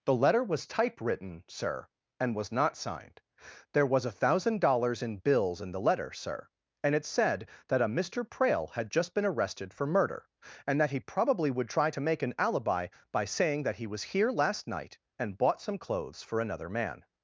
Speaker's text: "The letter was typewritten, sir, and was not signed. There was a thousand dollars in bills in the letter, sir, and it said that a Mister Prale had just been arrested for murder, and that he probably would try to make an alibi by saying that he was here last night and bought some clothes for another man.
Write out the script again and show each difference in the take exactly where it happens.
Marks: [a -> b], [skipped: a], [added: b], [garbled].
"The letter was typewritten, sir, and was not signed. There was a thousand dollars in bills in the letter, sir, and it said that a Mister Prale had just been arrested for murder, and that he probably would try to make an alibi by saying that he was here last night and bought some clothes for another man.